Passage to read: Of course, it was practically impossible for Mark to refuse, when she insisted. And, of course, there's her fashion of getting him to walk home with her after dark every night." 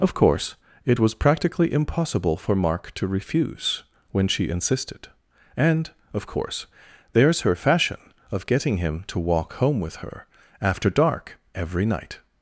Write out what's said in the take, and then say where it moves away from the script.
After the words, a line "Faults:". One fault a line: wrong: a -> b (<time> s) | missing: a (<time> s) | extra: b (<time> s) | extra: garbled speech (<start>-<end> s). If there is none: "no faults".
Of course, it was practically impossible for Mark to refuse, when she insisted. And, of course, there's her fashion of getting him to walk home with her after dark every night."
Faults:
no faults